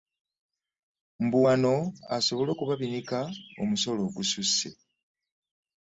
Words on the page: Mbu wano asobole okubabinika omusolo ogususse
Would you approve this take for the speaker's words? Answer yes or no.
yes